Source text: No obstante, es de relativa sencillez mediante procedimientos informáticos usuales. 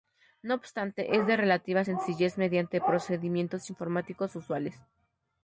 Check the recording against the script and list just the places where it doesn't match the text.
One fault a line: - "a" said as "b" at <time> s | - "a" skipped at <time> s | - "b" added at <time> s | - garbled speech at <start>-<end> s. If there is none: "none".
none